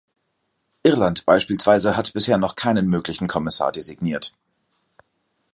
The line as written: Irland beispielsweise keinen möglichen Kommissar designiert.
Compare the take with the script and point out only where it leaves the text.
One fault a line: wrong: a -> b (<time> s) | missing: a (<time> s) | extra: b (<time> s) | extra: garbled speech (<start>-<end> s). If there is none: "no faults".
extra: hat bisher noch (1.9 s)